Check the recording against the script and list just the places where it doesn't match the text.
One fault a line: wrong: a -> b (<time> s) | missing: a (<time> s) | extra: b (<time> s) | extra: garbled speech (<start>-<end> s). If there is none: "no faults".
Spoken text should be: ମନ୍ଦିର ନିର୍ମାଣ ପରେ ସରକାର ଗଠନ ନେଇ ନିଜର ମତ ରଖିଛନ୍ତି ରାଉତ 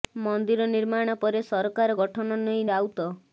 missing: ନିଜର ମତ ରଖିଛନ୍ତି (2.6 s)